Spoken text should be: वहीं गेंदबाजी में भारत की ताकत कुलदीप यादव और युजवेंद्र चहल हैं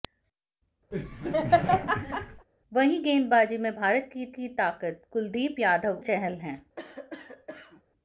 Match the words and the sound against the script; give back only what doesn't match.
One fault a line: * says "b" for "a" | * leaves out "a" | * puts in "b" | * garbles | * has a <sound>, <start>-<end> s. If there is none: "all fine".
* has a laugh, 0.9-2.5 s
* puts in "की"
* leaves out "और युजवेंद्र"
* has a cough, 6.8-7.8 s